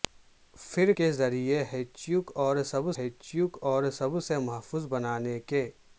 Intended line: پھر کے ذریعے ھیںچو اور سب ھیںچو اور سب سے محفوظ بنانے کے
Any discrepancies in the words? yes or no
no